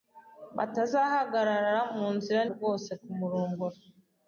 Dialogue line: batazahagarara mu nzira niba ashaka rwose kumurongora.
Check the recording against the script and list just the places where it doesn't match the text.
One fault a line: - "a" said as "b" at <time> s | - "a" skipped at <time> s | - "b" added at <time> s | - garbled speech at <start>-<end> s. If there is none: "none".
- "niba ashaka" skipped at 2.4 s